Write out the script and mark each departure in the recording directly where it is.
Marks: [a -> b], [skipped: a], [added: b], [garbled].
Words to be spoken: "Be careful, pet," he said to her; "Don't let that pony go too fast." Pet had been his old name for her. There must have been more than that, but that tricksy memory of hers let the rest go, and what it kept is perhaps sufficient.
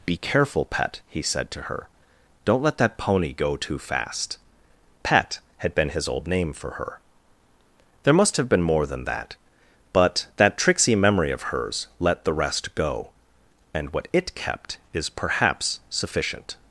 "Be careful, pet," he said to her; "Don't let that pony go too fast." Pet had been his old name for her. There must have been more than that, but that tricksy memory of hers let the rest go, and what it kept is perhaps sufficient.